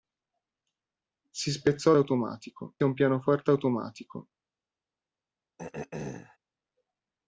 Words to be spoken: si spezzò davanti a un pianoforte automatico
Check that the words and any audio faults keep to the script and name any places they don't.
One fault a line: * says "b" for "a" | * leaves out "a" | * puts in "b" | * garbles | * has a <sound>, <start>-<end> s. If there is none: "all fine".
* says "automatico" for "davanti"
* has a throat clearing, 5.6-6.4 s